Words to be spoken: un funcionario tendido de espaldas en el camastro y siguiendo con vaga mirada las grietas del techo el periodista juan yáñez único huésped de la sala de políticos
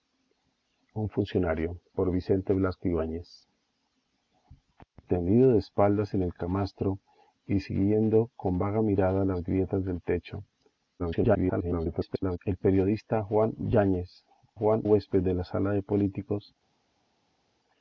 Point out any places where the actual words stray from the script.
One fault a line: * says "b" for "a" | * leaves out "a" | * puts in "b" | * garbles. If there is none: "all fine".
* garbles
* says "juan" for "único"